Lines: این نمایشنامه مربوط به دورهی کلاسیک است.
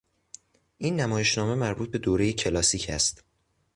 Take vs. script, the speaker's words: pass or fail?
pass